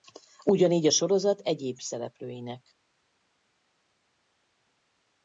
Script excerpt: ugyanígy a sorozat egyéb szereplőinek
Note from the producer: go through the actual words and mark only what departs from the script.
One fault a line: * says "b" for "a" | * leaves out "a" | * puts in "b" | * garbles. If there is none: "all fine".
all fine